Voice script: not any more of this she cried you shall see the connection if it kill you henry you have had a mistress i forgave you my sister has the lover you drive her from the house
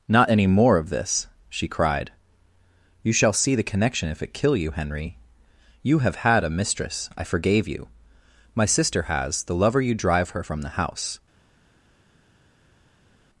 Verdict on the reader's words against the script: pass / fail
pass